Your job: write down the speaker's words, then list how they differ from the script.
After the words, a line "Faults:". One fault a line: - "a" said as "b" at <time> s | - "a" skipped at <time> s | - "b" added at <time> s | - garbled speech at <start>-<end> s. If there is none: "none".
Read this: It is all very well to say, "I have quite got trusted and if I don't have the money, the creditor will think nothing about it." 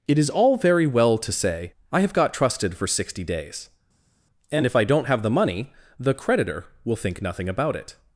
It is all very well to say, "I have got trusted for sixty days, and if I don't have the money, the creditor will think nothing about it."
Faults:
- "quite" skipped at 2.1 s
- "for sixty days" added at 2.8 s